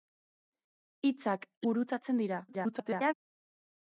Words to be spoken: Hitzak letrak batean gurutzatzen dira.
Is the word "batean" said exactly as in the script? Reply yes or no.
no